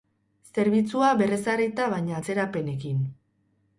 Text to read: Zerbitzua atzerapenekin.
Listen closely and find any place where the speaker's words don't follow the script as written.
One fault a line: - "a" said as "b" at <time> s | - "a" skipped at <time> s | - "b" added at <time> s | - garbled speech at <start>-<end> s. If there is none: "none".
- "berrezarrita baina" added at 1.2 s